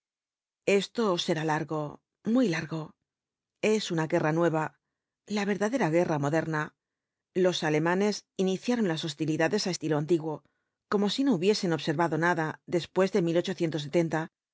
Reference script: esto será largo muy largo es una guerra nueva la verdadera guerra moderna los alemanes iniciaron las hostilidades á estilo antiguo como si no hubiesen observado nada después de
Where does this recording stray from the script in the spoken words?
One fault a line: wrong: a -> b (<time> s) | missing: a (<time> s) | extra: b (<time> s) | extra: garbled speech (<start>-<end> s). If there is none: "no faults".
no faults